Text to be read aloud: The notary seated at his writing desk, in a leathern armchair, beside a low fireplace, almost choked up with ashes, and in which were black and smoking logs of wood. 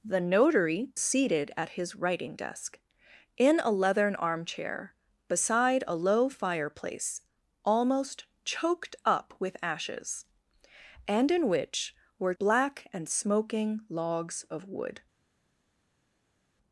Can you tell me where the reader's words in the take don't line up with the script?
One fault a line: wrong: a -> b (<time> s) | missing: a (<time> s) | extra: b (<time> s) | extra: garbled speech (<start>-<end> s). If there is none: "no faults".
no faults